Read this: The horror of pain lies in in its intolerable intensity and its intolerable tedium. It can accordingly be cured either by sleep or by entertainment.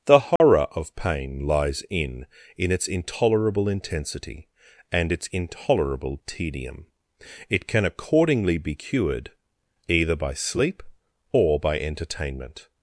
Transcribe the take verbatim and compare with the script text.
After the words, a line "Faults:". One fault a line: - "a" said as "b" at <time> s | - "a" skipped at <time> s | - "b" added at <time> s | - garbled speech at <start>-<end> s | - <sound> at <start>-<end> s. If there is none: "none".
The horror of pain lies in in its intolerable intensity and its intolerable tedium. It can accordingly be cured either by sleep or by entertainment.
Faults:
- dropout at 0.4-0.4 s